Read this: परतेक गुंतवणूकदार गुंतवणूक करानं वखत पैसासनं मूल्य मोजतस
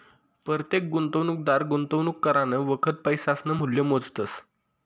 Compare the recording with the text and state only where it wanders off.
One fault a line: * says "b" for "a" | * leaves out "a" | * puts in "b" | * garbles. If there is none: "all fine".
all fine